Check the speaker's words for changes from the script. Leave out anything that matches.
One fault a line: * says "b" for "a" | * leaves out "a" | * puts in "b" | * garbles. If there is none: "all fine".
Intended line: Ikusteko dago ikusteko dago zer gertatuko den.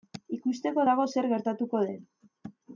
* leaves out "ikusteko dago"